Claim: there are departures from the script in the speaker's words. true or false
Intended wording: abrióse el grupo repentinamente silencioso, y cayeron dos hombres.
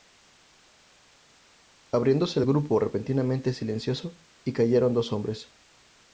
false